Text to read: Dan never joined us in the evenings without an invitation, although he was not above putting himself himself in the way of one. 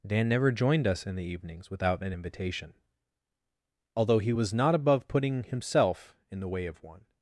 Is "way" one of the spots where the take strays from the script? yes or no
no